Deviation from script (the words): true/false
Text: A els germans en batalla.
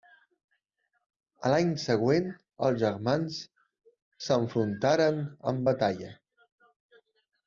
true